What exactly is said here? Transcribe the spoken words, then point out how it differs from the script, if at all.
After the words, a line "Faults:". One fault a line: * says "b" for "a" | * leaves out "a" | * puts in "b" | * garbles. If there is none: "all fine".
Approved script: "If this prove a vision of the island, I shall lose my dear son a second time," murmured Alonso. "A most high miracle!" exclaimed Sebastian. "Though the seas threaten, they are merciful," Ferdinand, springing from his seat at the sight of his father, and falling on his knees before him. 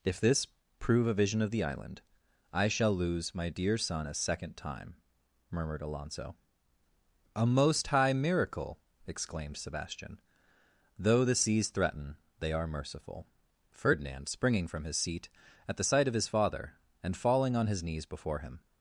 "If this prove a vision of the island, I shall lose my dear son a second time," murmured Alonso. "A most high miracle!" exclaimed Sebastian. "Though the seas threaten, they are merciful," Ferdinand, springing from his seat at the sight of his father, and falling on his knees before him.
Faults:
all fine